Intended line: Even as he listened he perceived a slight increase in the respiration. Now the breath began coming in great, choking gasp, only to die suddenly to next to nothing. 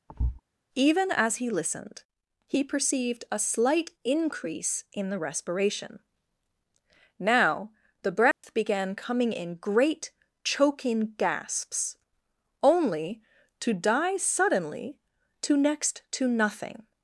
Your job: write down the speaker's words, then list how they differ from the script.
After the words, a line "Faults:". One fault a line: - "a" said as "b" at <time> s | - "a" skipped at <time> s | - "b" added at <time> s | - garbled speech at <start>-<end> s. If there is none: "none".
Even as he listened he perceived a slight increase in the respiration. Now the breath began coming in great, choking gasps, only to die suddenly to next to nothing.
Faults:
- "gasp" said as "gasps" at 11.2 s